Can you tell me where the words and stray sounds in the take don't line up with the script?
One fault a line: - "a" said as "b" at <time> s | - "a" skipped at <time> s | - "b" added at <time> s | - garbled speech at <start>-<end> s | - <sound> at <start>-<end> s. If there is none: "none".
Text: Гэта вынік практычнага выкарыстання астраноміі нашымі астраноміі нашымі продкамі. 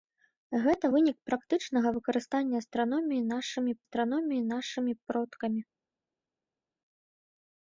none